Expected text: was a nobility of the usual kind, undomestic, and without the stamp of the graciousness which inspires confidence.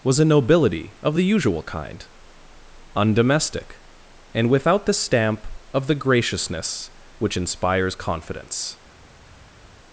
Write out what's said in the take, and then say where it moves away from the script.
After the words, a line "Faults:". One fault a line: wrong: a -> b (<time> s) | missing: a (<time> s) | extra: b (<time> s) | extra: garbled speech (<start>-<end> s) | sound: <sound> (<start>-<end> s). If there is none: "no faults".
was a nobility of the usual kind, undomestic, and without the stamp of the graciousness which inspires confidence.
Faults:
no faults